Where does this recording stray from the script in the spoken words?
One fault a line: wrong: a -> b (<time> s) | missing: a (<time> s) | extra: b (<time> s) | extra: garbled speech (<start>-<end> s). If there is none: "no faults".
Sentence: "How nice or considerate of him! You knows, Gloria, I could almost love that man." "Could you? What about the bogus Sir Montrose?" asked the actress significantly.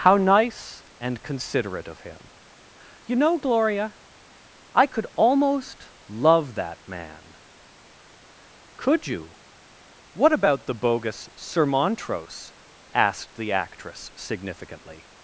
wrong: or -> and (1.0 s)
wrong: knows -> know (3.1 s)